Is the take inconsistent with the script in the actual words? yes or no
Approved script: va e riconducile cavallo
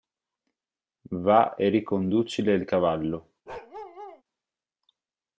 yes